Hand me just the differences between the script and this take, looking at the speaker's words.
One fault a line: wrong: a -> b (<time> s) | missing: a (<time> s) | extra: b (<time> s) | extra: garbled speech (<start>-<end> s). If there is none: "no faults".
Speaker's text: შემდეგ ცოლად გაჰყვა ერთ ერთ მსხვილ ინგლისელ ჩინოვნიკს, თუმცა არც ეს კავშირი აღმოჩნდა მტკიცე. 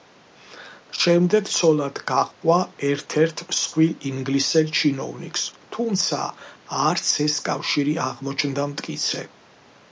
no faults